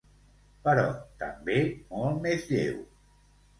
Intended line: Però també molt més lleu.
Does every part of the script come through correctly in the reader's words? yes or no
yes